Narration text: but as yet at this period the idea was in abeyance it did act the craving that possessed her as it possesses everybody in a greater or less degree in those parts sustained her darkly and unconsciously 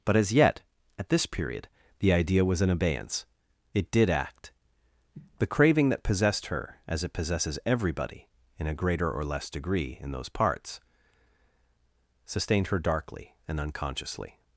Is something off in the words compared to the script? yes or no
no